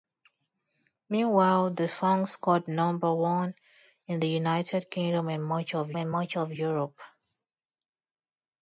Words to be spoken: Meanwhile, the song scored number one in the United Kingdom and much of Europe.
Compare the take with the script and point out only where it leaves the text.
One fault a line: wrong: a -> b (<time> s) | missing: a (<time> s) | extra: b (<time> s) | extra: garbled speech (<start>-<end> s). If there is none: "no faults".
extra: and much of (6.0 s)